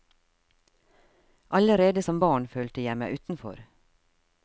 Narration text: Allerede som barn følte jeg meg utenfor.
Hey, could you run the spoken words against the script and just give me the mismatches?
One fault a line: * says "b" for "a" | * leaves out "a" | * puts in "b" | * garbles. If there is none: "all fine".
all fine